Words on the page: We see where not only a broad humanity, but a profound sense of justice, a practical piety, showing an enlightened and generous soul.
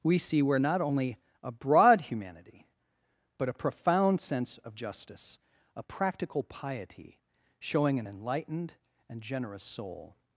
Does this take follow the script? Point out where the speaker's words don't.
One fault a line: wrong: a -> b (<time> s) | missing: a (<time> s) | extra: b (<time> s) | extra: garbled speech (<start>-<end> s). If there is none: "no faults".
no faults